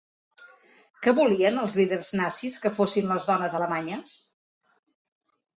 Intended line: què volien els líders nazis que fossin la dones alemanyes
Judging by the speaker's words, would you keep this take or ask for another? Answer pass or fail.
fail